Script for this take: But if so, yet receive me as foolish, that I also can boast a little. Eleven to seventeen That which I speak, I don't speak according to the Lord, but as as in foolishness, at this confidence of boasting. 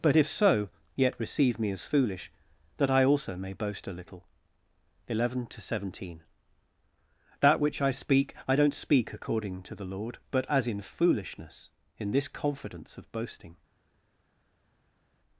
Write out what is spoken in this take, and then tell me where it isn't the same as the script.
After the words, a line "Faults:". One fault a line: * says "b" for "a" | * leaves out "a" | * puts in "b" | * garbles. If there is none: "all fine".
But if so, yet receive me as foolish, that I also may boast a little. Eleven to seventeen That which I speak, I don't speak according to the Lord, but as in foolishness, in this confidence of boasting.
Faults:
* says "may" for "can"
* leaves out "as"
* says "in" for "at"